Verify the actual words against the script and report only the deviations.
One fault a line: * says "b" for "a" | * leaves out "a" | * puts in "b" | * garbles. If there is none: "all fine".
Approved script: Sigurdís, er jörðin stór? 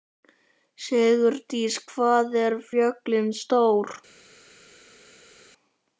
* puts in "hvað"